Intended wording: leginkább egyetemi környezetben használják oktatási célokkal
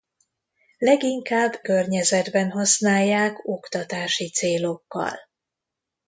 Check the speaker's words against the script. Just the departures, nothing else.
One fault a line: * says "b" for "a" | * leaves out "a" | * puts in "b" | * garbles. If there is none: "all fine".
* leaves out "egyetemi"